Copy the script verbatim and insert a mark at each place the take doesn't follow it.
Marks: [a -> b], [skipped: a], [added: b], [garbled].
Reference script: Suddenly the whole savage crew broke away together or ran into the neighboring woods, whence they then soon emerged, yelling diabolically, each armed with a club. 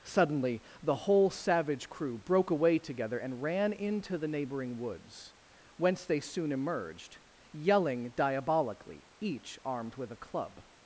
Suddenly the whole savage crew broke away together [or -> and] ran into the neighboring woods, whence they [skipped: then] soon emerged, yelling diabolically, each armed with a club.